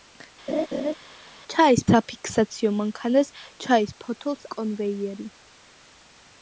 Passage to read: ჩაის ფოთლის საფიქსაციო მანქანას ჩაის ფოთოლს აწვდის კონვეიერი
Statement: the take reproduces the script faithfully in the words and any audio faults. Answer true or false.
false